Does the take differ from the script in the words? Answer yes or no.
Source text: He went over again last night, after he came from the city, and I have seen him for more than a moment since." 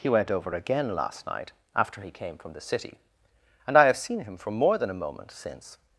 no